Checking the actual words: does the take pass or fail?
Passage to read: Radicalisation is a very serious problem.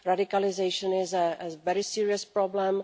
pass